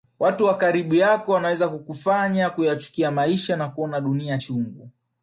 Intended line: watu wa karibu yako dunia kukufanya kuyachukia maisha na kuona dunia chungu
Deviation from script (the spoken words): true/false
true